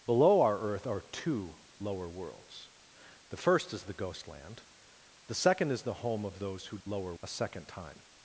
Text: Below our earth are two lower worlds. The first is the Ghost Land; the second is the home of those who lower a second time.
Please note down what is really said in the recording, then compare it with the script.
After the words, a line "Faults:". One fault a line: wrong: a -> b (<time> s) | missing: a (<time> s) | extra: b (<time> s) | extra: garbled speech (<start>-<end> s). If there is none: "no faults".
Below our earth are two lower worlds. The first is the Ghost Land; the second is the home of those who lower a second time.
Faults:
no faults